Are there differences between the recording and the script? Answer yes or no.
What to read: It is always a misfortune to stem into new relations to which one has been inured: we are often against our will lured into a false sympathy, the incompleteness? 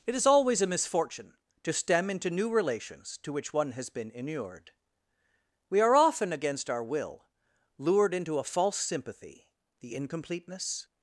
no